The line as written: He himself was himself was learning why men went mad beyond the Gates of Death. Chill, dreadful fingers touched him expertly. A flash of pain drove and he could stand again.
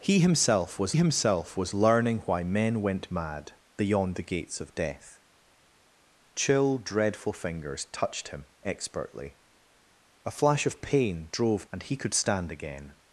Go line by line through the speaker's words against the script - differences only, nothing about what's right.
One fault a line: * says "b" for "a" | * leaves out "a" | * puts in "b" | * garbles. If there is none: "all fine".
all fine